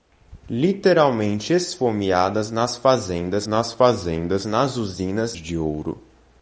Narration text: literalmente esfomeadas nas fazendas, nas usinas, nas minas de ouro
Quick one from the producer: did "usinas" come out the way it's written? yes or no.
no